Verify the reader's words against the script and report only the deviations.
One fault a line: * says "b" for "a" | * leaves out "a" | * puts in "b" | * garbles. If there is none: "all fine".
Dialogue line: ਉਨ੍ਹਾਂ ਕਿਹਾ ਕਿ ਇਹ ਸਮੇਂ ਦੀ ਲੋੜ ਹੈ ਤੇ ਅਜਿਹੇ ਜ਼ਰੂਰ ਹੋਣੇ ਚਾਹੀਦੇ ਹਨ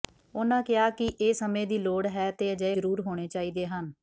all fine